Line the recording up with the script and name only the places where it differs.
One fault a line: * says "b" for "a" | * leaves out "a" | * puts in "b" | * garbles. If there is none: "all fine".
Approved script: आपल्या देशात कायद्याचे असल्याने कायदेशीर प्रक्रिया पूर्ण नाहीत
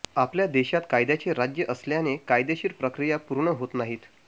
* puts in "राज्य"
* puts in "होत"